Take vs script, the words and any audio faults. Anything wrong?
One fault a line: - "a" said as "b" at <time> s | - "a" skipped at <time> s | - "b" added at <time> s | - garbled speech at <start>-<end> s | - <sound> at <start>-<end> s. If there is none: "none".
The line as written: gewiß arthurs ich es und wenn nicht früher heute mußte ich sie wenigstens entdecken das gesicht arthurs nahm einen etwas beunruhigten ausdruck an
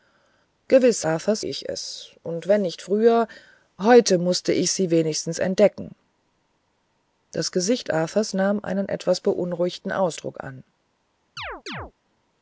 - chirp at 11.4-11.9 s